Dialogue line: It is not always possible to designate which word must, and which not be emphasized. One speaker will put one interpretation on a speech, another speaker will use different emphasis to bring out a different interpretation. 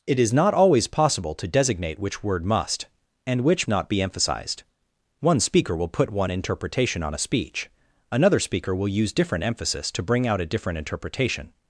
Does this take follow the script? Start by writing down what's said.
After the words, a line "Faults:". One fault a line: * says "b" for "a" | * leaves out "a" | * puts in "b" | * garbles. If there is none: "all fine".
It is not always possible to designate which word must, and which not be emphasized. One speaker will put one interpretation on a speech, another speaker will use different emphasis to bring out a different interpretation.
Faults:
all fine